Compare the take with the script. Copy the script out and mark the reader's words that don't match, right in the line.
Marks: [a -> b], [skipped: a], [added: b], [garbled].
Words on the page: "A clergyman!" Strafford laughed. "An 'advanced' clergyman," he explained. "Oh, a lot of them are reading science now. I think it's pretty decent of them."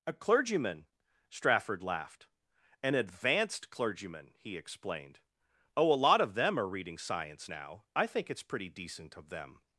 "A clergyman!" Strafford laughed. "An 'advanced' clergyman," he explained. "Oh, a lot of them are reading science now. I think it's pretty decent of them."